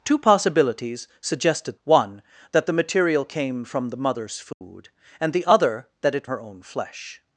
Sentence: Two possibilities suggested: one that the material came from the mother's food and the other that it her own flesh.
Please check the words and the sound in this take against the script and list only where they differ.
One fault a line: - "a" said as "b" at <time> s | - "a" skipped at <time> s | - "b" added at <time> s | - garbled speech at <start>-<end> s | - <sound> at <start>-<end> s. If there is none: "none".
- dropout at 4.5-4.6 s